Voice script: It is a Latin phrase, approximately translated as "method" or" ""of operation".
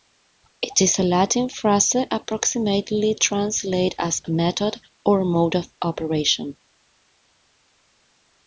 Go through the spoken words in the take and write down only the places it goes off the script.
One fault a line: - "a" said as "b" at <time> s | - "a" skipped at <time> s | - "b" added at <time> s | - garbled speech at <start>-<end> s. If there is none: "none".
- "mode" added at 5.2 s